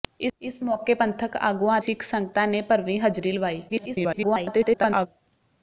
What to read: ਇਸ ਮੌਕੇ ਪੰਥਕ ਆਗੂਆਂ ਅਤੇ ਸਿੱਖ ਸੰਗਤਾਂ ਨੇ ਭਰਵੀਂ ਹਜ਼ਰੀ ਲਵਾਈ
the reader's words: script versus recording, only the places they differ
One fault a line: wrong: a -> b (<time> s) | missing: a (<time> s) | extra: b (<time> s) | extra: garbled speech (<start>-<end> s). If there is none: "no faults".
missing: ਅਤੇ (1.8 s)
extra: garbled speech (3.7-5.1 s)